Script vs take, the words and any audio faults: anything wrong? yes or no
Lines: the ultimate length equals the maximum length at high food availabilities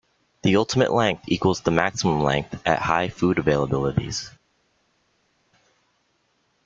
no